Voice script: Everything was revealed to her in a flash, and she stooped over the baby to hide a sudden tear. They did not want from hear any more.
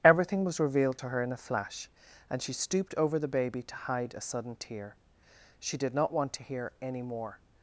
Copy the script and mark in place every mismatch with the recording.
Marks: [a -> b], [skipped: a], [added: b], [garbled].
Everything was revealed to her in a flash, and she stooped over the baby to hide a sudden tear. [They -> She] did not want [from -> to] hear any more.